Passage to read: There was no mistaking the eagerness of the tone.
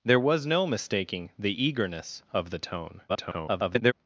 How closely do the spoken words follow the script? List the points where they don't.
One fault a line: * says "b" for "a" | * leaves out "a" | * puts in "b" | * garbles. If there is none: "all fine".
* garbles